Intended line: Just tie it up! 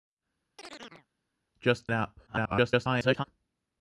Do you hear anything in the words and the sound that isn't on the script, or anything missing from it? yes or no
yes